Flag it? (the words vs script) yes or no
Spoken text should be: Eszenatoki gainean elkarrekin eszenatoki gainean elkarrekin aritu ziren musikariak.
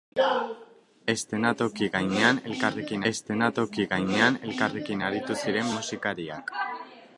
no